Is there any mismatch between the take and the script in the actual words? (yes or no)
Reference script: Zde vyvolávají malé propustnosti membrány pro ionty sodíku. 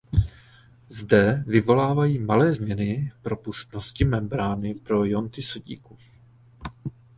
yes